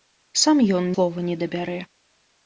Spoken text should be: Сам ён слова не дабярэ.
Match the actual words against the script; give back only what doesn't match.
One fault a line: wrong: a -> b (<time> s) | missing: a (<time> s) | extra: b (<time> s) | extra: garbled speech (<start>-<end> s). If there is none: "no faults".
no faults